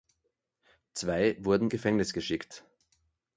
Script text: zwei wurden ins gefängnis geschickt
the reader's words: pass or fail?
fail